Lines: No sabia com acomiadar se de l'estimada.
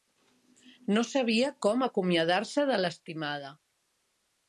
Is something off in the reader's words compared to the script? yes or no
no